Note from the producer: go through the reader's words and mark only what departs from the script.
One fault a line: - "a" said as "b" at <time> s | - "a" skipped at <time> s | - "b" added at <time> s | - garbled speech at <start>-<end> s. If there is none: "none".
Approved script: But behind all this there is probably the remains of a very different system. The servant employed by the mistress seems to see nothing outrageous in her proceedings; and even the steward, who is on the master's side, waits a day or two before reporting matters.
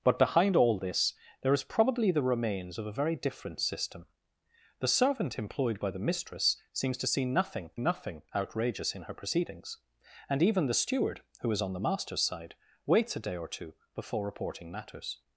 - "nothing" added at 7.7 s